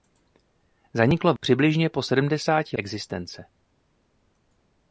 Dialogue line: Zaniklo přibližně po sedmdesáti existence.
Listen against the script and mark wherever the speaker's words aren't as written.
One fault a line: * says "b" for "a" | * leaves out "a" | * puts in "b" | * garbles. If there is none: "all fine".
all fine